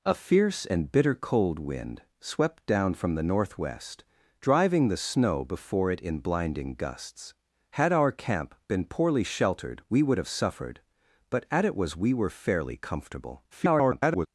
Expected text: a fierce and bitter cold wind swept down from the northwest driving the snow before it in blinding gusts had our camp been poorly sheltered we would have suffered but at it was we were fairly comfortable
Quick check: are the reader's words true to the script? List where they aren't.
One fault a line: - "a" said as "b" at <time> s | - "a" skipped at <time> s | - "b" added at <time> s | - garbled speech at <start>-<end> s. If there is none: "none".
- garbled speech at 13.5-14.3 s